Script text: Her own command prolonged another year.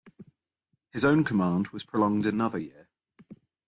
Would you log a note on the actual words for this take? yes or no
yes